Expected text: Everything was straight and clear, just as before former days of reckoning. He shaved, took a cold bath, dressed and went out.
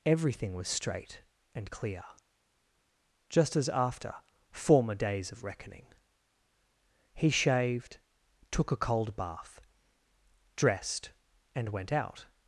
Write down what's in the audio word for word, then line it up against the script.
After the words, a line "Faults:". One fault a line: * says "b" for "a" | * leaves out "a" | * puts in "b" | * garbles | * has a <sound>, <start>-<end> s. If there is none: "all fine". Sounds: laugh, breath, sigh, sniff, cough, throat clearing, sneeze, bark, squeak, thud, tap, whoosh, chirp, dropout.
Everything was straight and clear, just as after former days of reckoning. He shaved, took a cold bath, dressed and went out.
Faults:
* says "after" for "before"